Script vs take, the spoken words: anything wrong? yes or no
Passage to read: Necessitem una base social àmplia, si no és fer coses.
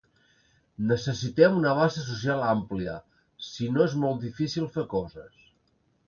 yes